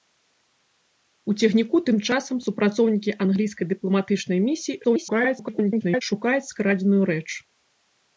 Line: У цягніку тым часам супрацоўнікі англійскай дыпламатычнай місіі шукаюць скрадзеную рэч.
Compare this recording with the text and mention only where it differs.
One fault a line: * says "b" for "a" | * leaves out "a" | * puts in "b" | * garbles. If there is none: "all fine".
* garbles